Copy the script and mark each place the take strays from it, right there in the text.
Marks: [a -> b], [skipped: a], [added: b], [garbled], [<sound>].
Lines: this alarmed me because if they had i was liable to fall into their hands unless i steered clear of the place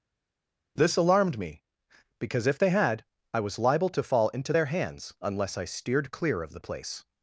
this alarmed me because if they had i was liable to fall into their hands unless i steered clear of the place